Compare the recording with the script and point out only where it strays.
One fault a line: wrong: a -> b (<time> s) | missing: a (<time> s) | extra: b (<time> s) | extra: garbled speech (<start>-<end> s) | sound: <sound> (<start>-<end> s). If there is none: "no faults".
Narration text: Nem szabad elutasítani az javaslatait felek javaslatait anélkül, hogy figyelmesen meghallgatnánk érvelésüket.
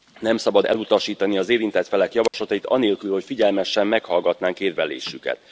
wrong: javaslatait -> érintett (1.5 s)
sound: dropout (2.3-2.3 s)